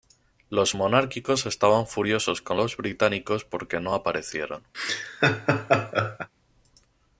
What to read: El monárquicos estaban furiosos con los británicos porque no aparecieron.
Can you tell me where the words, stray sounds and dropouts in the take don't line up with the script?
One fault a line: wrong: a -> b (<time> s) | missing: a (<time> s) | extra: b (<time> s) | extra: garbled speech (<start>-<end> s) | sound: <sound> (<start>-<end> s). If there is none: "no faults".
wrong: El -> Los (0.5 s)
sound: laugh (4.7-6.3 s)